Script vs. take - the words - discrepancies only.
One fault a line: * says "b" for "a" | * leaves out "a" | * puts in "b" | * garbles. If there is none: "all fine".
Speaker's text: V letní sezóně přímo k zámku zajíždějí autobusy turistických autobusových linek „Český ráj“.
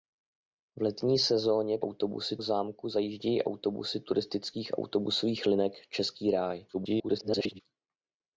* says "autobusy" for "přímo"
* garbles